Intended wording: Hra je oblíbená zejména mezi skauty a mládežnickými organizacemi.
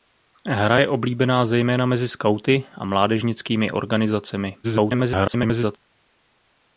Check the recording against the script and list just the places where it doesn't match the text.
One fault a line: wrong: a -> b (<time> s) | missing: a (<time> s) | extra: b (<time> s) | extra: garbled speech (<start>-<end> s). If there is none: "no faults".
extra: garbled speech (4.6-5.8 s)